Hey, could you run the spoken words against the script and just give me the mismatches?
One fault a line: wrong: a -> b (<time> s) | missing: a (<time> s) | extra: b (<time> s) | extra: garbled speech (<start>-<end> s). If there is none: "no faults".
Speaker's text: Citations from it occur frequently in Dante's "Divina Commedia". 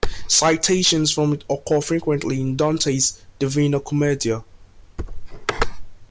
no faults